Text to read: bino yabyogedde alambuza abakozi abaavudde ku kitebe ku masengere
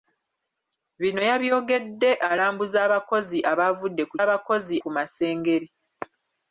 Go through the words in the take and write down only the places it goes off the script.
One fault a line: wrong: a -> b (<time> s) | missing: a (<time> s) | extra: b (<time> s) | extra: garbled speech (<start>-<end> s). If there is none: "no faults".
wrong: kitebe -> abakozi (4.2 s)